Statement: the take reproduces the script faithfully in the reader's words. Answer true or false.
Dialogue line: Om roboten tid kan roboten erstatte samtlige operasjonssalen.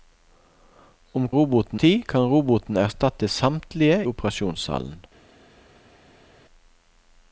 true